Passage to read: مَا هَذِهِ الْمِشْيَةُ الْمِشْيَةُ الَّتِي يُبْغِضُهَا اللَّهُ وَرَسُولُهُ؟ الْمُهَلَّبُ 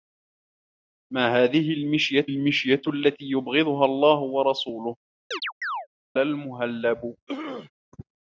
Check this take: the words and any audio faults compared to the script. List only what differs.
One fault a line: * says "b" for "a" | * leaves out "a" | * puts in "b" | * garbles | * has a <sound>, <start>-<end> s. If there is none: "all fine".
* has a chirp, 5.3-5.9 s
* has a throat clearing, 7.3-7.7 s